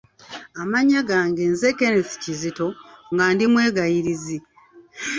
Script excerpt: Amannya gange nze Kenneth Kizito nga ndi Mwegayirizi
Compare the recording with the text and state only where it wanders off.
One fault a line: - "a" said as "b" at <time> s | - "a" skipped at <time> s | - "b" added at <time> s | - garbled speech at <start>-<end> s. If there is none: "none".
none